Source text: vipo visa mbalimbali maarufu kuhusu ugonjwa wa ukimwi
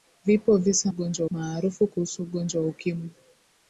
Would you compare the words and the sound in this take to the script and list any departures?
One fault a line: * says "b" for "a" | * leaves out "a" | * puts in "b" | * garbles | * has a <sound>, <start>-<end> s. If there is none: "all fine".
* says "ugonjwa" for "mbalimbali"